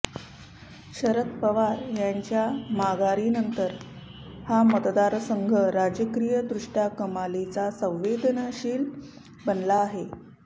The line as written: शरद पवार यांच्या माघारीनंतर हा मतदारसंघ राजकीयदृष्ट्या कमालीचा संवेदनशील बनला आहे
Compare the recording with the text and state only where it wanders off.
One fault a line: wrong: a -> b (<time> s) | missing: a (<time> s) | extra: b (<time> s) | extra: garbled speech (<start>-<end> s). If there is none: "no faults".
no faults